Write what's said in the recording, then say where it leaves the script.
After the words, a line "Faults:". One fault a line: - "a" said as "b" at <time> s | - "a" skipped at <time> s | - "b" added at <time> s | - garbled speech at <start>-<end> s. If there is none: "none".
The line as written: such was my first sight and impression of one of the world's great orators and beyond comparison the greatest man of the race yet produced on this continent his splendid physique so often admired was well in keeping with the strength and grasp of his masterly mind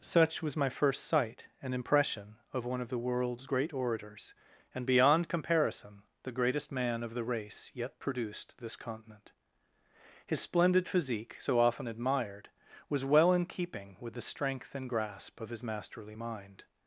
such was my first sight and impression of one of the world's great orators and beyond comparison the greatest man of the race yet produced this continent his splendid physique so often admired was well in keeping with the strength and grasp of his masterly mind
Faults:
- "on" skipped at 8.6 s